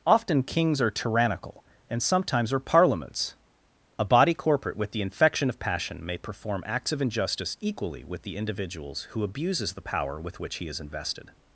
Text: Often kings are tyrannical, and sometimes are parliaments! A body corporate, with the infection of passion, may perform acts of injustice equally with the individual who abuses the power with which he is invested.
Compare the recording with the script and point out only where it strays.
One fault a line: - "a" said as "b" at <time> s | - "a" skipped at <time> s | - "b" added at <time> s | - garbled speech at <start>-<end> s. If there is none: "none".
- "individual" said as "individuals" at 8.3 s